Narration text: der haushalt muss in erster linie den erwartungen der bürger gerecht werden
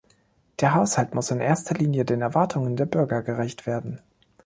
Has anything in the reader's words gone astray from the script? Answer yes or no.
no